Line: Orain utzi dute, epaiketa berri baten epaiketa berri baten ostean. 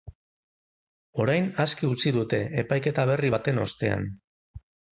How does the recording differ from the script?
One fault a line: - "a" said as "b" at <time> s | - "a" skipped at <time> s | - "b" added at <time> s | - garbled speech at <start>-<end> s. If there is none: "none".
- "aske" added at 1.6 s
- "epaiketa berri baten" skipped at 3.6 s